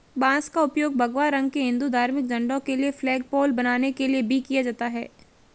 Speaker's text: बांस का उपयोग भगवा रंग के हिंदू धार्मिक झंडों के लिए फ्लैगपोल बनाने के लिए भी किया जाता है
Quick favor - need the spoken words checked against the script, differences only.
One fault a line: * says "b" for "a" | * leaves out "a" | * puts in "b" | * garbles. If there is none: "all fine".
all fine